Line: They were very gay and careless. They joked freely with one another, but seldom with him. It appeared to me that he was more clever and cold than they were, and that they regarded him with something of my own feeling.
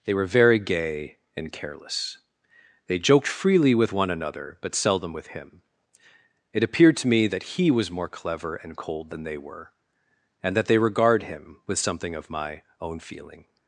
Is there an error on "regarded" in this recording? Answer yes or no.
yes